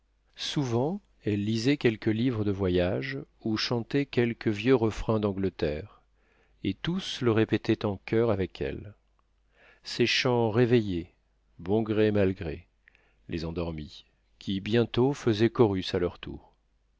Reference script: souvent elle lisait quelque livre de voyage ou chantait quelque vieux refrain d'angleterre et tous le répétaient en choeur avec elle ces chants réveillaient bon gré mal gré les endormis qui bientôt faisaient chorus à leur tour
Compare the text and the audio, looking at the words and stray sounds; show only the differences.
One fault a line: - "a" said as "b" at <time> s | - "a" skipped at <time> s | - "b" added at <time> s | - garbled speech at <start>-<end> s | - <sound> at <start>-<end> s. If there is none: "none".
none